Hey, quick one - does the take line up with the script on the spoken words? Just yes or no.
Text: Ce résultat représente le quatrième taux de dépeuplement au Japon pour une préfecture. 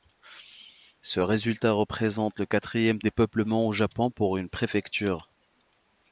no